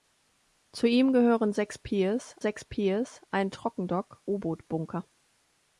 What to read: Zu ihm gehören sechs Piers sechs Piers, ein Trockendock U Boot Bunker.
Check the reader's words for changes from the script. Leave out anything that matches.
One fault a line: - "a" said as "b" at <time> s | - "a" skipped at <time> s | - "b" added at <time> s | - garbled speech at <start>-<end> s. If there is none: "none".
none